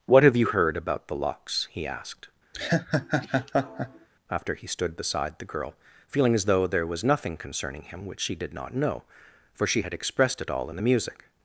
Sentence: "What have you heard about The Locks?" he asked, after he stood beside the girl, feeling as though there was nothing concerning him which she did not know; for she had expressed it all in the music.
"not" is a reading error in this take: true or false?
false